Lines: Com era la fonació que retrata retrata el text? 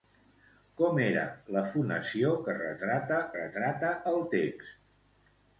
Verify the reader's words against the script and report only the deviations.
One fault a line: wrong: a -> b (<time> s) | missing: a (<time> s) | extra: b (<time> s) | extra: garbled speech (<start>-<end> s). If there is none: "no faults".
no faults